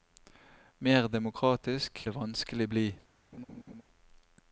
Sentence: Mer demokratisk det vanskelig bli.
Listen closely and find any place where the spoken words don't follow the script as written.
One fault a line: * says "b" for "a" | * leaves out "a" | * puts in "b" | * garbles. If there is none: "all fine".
all fine